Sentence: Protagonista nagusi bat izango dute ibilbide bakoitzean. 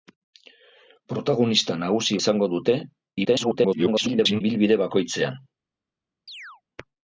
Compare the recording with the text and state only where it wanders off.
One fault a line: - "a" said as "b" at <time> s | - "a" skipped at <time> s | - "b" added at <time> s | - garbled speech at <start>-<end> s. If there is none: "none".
- "bat" skipped at 2.2 s
- garbled speech at 3.2-4.4 s